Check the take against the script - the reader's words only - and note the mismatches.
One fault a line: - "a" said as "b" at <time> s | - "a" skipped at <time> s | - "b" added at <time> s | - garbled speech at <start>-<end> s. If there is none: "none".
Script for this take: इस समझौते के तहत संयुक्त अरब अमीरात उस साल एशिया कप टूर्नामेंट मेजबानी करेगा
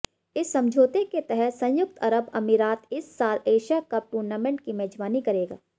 - "उस" said as "इस" at 2.9 s
- "की" added at 4.6 s